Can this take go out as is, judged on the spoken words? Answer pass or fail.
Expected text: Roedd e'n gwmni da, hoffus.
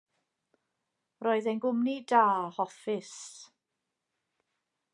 pass